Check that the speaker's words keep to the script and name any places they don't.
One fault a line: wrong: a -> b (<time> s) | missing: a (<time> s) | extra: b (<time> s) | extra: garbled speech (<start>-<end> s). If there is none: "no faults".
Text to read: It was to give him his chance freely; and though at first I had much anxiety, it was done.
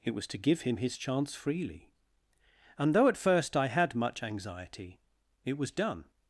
no faults